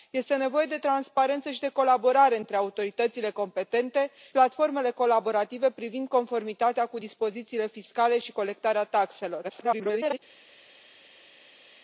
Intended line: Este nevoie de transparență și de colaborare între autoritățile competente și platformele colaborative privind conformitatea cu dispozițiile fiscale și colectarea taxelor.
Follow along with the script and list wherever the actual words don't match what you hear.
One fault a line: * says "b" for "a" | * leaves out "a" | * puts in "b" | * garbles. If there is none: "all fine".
* leaves out "și"
* garbles